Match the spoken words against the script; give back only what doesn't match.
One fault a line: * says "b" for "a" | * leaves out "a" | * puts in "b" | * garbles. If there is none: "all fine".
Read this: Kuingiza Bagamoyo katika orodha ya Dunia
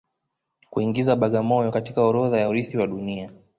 * puts in "urithi wa"